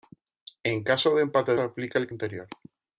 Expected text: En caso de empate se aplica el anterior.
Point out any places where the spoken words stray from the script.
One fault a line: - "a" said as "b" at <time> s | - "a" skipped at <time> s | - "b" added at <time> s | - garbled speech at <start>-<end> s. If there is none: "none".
none